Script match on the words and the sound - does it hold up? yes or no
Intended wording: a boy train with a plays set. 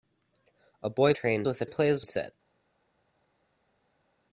yes